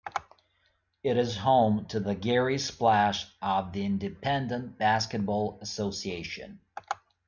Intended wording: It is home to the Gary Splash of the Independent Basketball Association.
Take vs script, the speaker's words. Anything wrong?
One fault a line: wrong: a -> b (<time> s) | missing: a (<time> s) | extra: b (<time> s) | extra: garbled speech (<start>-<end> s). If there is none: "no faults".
no faults